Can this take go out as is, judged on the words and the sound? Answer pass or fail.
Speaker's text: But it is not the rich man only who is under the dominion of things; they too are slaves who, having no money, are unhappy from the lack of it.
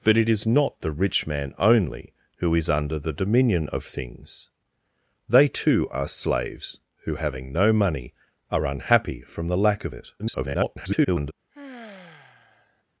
fail